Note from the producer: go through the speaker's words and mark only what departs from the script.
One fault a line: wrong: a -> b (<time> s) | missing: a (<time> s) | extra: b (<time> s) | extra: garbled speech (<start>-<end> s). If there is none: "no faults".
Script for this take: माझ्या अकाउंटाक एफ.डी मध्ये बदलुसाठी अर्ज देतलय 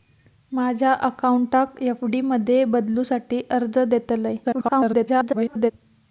extra: garbled speech (4.4-5.7 s)